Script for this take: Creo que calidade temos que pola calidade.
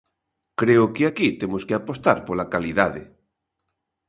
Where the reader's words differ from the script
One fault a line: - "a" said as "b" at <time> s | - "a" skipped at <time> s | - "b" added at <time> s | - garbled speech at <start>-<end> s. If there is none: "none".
- "calidade" said as "aquí" at 1.1 s
- "apostar" added at 1.7 s